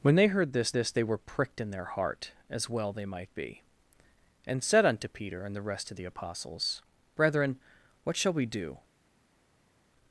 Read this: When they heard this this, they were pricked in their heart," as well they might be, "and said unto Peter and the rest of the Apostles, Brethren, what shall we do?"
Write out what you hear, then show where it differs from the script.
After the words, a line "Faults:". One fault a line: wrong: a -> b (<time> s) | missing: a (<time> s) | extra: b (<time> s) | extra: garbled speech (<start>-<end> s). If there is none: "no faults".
When they heard this this, they were pricked in their heart," as well they might be, "and said unto Peter and the rest of the Apostles, Brethren, what shall we do?"
Faults:
no faults